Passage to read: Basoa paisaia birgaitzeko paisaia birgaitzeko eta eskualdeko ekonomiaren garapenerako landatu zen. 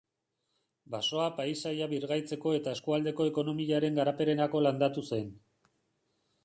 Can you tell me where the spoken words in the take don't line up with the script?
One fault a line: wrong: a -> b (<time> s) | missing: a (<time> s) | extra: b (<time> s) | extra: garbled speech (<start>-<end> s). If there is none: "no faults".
missing: paisaia birgaitzeko (2.5 s)